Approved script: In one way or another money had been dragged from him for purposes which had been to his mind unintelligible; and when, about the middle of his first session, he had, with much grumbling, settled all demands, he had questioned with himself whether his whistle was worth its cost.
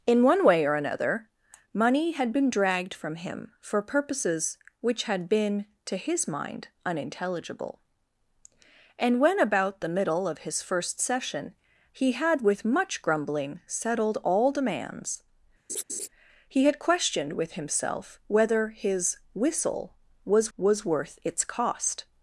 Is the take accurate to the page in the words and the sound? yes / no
no